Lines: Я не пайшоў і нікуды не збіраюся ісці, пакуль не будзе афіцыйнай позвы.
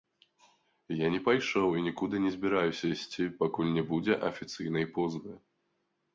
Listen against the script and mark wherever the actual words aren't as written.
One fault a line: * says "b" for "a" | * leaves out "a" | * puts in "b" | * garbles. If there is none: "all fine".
all fine